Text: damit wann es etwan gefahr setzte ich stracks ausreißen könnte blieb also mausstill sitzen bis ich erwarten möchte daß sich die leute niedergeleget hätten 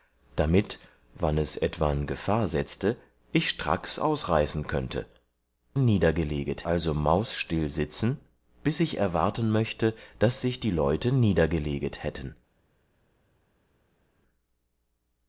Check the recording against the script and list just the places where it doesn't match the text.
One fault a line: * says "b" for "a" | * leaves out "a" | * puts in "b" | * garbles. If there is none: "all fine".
* says "niedergeleget" for "blieb"